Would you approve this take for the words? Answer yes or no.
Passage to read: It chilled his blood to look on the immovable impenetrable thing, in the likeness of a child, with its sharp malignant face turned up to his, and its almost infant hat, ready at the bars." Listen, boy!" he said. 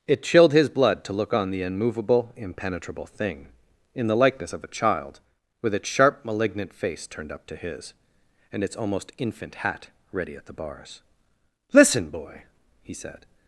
yes